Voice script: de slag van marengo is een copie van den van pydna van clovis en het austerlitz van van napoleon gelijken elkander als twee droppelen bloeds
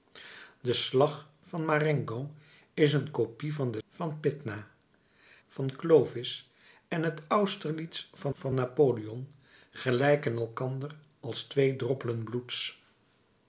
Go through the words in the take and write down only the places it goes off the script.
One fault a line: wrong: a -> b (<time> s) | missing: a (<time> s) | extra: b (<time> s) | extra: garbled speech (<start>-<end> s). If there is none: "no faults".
no faults